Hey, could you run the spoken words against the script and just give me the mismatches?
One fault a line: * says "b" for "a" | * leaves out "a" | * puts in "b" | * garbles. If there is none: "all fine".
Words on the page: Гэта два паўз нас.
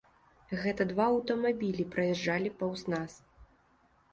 * puts in "аўтамабілі праязджалі"